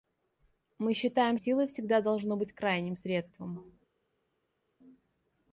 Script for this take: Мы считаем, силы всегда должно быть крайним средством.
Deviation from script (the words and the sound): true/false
false